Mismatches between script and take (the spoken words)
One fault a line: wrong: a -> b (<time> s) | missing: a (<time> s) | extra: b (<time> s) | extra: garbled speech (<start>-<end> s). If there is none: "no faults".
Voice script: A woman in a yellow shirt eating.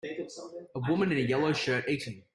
no faults